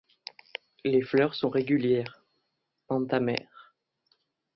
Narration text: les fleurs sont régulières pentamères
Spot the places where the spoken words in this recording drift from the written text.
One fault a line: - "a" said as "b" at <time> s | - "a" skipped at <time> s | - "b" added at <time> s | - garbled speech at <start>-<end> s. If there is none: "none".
none